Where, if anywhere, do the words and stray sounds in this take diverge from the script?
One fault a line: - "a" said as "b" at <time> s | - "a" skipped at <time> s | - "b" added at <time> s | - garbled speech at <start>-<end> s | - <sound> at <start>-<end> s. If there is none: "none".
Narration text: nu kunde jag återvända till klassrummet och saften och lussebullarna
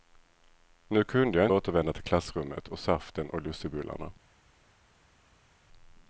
none